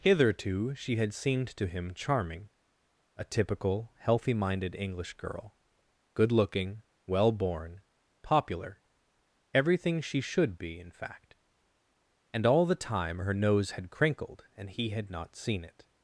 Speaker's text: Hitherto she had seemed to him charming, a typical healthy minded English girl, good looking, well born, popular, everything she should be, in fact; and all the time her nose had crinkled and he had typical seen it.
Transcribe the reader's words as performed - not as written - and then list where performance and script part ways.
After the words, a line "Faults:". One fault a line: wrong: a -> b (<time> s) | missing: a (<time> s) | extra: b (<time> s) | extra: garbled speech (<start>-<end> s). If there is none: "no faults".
Hitherto she had seemed to him charming, a typical healthy minded English girl, good looking, well born, popular, everything she should be, in fact; and all the time her nose had crinkled and he had not seen it.
Faults:
wrong: typical -> not (15.1 s)